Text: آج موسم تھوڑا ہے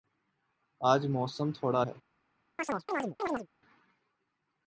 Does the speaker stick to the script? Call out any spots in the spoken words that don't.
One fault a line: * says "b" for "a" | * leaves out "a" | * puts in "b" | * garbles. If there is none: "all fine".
all fine